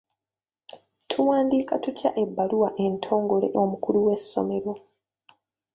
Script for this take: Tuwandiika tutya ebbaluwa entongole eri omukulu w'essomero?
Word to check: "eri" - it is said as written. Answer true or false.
false